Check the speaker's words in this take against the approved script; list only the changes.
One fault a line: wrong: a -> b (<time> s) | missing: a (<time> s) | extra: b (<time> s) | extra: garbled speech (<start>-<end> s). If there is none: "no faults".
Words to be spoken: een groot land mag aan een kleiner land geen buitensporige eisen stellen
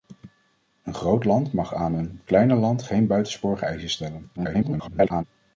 extra: garbled speech (4.4-5.2 s)